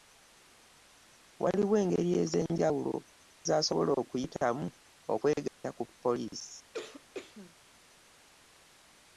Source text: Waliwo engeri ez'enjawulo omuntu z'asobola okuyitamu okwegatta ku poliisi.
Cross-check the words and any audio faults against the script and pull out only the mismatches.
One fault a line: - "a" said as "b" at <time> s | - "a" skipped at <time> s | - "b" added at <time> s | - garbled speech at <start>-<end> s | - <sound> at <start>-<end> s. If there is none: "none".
- "omuntu" skipped at 3.0 s
- dropout at 5.5-5.6 s
- cough at 6.7-7.5 s